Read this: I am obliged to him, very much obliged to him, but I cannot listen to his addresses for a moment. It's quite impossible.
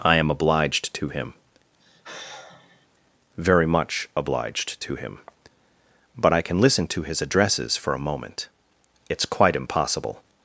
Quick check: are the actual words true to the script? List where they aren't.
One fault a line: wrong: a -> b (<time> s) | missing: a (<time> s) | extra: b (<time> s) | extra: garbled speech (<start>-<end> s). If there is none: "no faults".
wrong: cannot -> can (6.4 s)